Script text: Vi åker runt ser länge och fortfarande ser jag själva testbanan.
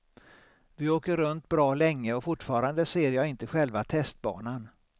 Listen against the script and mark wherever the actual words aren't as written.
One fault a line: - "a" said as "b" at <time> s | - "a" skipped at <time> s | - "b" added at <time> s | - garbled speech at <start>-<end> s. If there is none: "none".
- "ser" said as "bra" at 1.5 s
- "inte" added at 3.3 s